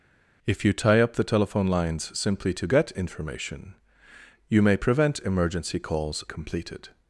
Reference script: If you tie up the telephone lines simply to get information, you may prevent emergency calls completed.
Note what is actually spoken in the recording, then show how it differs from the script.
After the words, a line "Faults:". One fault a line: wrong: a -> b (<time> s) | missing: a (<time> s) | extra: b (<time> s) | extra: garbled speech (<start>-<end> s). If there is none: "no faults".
If you tie up the telephone lines simply to get information, you may prevent emergency calls completed.
Faults:
no faults